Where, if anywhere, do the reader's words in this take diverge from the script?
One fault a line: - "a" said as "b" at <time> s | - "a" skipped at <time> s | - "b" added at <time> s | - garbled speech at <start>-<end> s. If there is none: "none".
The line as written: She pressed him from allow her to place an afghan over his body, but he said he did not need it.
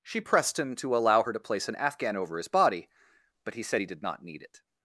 - "from" said as "to" at 0.8 s